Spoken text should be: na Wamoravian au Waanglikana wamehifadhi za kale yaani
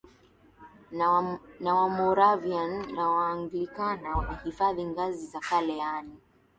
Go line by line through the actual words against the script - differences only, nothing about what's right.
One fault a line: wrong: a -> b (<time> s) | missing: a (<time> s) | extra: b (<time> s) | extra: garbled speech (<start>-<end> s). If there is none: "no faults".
wrong: au -> na (3.0 s)
extra: ngazi (4.8 s)